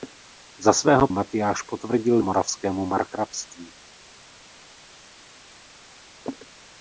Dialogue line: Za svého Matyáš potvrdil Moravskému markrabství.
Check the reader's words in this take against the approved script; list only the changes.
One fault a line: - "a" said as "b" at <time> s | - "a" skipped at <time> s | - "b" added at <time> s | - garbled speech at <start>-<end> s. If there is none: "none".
none